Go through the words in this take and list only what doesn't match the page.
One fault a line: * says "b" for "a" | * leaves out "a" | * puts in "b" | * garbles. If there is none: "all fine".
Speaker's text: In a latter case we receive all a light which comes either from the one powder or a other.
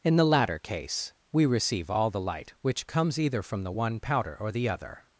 * says "the" for "a"
* says "the" for "a"
* says "the" for "a"